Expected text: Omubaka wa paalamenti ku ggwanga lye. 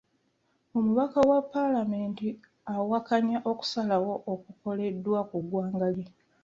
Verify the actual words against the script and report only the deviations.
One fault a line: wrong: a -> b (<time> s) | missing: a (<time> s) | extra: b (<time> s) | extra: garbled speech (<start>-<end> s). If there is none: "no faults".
extra: awakanya okusalawo okukoleddwa (2.7 s)